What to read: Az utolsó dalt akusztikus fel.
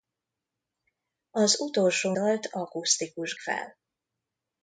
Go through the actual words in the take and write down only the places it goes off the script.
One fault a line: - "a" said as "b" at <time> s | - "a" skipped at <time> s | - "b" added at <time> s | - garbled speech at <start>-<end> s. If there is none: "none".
none